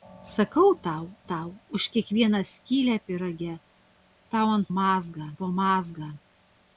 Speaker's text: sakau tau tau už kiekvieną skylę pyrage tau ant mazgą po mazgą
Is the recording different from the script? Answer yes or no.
no